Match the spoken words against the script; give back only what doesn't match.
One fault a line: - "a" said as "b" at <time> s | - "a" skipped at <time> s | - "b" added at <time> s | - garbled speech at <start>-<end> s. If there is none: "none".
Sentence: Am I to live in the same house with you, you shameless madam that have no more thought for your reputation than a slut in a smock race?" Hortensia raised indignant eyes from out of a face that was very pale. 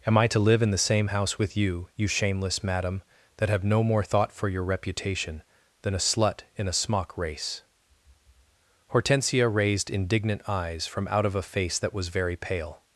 none